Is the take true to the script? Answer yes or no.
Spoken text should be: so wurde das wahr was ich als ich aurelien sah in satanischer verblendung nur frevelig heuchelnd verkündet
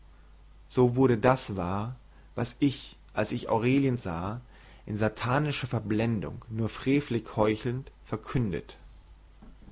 yes